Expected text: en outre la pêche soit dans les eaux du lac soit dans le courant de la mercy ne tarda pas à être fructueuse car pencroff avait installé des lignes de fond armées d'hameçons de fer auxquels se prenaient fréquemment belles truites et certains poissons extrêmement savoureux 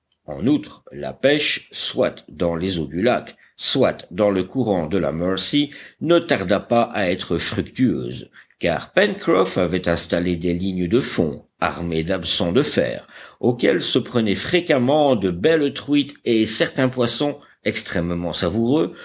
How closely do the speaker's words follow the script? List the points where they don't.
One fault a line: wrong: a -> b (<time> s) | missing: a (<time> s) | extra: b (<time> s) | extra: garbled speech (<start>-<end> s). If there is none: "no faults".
extra: de (15.2 s)